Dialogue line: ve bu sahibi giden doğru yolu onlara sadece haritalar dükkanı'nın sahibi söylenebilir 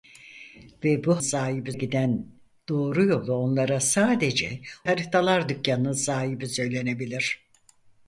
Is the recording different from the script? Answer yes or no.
no